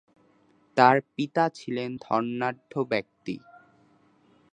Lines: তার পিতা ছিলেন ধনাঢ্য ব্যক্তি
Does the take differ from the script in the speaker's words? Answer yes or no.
no